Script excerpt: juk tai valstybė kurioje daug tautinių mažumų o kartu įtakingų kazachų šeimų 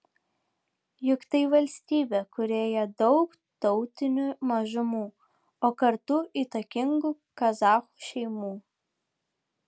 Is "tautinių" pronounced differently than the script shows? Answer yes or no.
no